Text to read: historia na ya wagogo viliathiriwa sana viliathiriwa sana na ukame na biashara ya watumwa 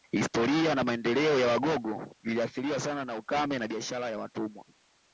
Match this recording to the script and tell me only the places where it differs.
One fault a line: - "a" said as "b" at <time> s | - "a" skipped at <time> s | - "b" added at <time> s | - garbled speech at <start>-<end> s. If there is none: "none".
- "maendeleo" added at 0.8 s
- "viliathiriwa sana" skipped at 3.0 s